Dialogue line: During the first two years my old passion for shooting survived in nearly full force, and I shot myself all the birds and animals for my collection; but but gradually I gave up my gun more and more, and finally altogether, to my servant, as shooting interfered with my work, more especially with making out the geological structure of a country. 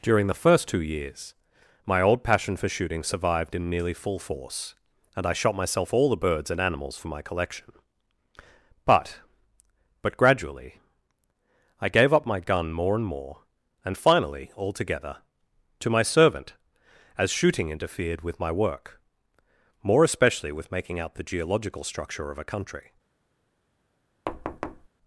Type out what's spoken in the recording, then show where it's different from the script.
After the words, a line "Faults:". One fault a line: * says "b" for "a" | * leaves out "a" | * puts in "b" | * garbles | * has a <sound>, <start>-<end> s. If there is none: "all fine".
During the first two years my old passion for shooting survived in nearly full force, and I shot myself all the birds and animals for my collection; but but gradually I gave up my gun more and more, and finally altogether, to my servant, as shooting interfered with my work, more especially with making out the geological structure of a country.
Faults:
* has a thud, 24.3-24.9 s